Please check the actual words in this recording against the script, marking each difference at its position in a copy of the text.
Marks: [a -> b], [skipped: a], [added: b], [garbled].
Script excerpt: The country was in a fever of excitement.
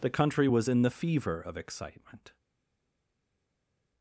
The country was in [a -> the] fever of excitement.